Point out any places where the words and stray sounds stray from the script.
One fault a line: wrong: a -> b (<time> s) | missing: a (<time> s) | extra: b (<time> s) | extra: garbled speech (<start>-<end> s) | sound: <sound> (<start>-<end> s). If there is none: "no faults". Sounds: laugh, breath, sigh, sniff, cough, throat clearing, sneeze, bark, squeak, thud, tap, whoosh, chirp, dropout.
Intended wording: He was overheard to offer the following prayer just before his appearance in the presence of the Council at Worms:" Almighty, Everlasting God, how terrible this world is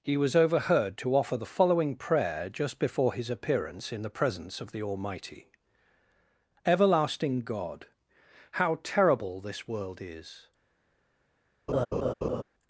missing: Council at Worms (4.8 s)
sound: laugh (11.7-12.4 s)